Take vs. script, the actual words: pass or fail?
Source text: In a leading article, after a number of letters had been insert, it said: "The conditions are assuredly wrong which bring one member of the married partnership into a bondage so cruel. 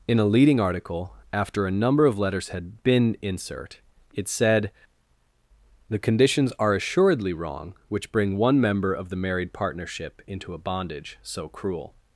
pass